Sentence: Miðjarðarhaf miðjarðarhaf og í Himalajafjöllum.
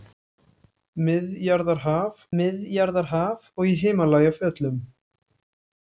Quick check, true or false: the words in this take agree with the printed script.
true